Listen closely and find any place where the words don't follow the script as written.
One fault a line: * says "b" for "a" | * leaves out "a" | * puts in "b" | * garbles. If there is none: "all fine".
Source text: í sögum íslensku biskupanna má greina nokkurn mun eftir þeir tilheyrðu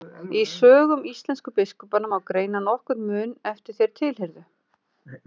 all fine